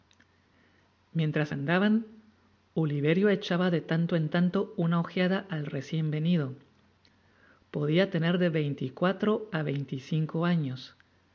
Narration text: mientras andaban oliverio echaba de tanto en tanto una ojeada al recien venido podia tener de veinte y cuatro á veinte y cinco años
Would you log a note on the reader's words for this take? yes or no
no